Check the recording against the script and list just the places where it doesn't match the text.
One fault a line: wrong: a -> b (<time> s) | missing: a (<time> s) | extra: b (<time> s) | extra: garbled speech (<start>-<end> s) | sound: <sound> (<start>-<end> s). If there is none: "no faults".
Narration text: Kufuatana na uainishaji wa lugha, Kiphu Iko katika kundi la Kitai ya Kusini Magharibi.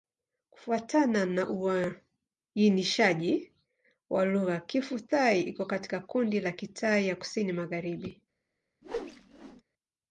extra: Thai (5.0 s)
sound: whoosh (8.8-9.6 s)